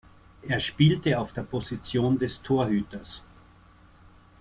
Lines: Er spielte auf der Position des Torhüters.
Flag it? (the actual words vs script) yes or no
no